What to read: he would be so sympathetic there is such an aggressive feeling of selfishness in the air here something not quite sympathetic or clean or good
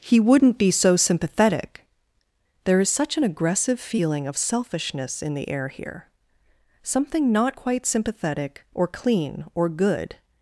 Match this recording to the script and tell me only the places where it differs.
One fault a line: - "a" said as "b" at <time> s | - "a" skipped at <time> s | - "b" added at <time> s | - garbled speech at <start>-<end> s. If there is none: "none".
- "would" said as "wouldn't" at 0.2 s